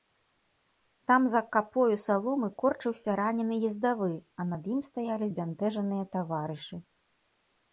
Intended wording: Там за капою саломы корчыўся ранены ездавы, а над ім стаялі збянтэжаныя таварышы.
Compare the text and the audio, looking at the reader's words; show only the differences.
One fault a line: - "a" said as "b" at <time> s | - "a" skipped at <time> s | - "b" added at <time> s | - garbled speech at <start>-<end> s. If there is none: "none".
none